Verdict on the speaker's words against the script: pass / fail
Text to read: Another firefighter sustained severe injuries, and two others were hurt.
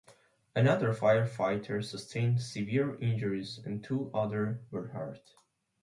pass